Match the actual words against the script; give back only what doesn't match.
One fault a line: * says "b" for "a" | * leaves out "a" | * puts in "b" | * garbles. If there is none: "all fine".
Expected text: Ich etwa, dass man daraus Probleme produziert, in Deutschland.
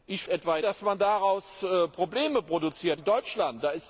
all fine